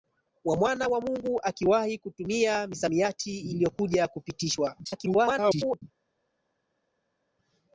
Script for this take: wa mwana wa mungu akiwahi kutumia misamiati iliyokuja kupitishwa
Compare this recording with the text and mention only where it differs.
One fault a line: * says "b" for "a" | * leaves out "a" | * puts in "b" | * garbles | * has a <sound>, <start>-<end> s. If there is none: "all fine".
* garbles